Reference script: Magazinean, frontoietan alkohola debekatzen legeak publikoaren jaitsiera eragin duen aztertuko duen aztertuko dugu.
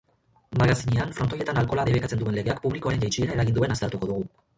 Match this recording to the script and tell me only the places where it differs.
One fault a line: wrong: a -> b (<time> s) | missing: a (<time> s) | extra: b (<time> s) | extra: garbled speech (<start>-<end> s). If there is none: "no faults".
extra: duen (2.2 s)
missing: duen aztertuko (4.1 s)